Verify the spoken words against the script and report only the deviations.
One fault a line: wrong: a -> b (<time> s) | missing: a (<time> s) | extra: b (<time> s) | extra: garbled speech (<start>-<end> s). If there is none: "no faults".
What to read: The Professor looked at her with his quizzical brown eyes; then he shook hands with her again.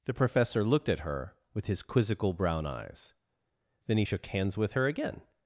no faults